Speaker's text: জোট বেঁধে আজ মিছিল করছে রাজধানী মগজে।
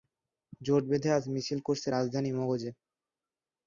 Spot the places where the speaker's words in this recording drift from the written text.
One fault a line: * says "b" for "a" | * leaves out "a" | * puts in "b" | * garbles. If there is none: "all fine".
all fine